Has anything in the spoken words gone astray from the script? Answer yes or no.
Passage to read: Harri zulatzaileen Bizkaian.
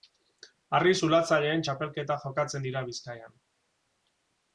yes